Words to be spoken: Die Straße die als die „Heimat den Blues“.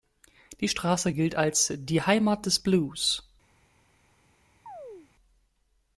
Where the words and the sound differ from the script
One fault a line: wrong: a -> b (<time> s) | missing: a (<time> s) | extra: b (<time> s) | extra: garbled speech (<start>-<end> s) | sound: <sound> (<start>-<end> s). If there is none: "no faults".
wrong: die -> gilt (1.1 s)
wrong: den -> des (2.4 s)
sound: chirp (4.7-5.1 s)